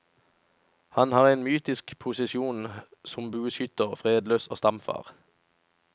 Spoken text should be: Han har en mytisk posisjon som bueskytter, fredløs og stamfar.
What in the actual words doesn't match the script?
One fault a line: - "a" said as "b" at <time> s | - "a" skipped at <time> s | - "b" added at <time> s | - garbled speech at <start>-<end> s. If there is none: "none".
none